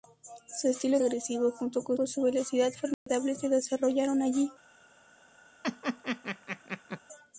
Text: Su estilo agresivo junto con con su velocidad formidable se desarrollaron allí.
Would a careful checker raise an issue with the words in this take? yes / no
no